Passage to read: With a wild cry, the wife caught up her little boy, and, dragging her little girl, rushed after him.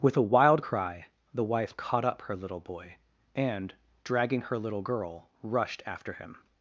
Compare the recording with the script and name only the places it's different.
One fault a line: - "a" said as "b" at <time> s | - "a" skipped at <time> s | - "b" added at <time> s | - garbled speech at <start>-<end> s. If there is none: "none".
none